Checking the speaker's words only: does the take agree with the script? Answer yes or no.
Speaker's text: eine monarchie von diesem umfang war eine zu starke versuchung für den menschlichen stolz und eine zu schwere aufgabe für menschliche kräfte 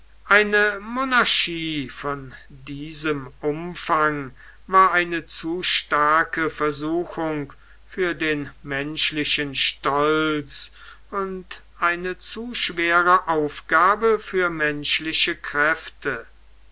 yes